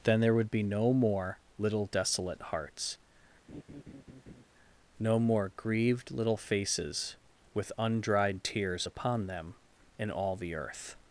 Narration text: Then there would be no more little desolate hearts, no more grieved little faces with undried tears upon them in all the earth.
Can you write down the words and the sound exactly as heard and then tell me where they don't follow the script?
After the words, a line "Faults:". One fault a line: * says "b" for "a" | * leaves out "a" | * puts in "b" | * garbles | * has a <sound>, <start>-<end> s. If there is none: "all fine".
Then there would be no more little desolate hearts, no more grieved little faces with undried tears upon them in all the earth.
Faults:
* has a laugh, 3.5-4.4 s